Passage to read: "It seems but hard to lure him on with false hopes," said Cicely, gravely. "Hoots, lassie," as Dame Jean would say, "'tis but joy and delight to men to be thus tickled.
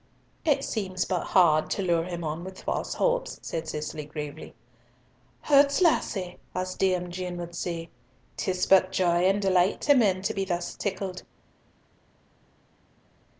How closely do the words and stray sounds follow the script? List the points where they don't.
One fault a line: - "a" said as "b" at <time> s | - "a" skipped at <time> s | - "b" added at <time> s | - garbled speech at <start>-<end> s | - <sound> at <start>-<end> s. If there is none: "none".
none